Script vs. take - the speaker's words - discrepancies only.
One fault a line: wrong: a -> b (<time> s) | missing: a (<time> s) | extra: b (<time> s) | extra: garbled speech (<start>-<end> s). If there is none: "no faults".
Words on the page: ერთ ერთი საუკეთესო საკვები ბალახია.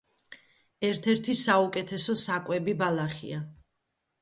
no faults